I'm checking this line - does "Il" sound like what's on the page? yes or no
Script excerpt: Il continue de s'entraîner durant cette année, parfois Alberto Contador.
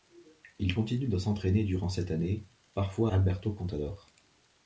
yes